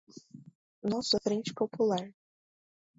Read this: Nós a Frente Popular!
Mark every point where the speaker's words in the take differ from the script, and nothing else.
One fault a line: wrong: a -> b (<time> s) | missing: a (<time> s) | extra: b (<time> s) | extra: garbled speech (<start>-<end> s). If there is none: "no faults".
no faults